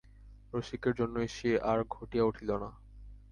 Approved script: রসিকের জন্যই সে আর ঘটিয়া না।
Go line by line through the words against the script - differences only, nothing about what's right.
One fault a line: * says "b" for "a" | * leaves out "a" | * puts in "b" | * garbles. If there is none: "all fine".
* puts in "উঠিল"